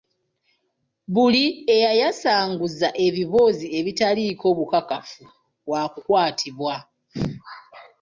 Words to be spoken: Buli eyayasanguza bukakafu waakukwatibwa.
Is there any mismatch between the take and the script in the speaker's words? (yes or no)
yes